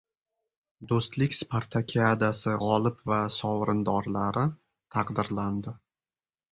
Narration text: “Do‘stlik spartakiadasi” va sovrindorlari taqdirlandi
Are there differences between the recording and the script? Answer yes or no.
yes